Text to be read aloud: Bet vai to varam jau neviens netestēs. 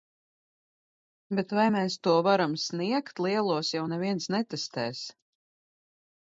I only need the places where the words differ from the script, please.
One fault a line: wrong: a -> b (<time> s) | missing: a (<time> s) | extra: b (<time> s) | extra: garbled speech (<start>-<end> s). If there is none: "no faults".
extra: mēs (1.7 s)
extra: sniegt Lielos (2.7 s)